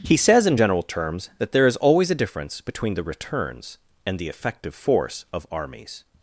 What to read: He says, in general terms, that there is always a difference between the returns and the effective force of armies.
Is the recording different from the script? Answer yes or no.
no